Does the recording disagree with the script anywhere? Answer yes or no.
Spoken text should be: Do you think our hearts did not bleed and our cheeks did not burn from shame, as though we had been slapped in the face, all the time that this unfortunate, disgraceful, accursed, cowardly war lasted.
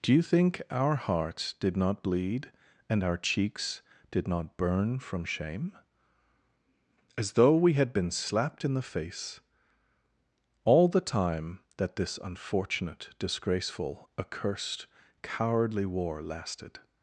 no